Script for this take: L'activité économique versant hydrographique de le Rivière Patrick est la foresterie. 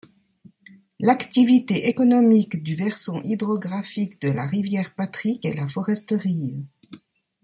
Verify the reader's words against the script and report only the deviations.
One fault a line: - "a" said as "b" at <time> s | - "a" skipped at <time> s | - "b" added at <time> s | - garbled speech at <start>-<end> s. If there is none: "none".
- "du" added at 2.6 s
- "le" said as "la" at 4.3 s